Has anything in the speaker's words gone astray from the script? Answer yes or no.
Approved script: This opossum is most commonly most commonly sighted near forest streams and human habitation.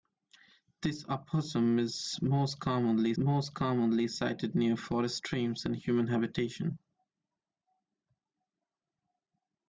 no